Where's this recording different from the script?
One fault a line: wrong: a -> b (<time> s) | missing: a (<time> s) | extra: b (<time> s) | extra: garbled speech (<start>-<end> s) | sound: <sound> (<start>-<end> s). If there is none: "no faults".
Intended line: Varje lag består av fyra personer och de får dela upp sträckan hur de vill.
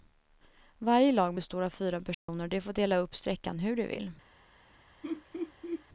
sound: dropout (2.1-2.3 s)
sound: laugh (5.0-5.8 s)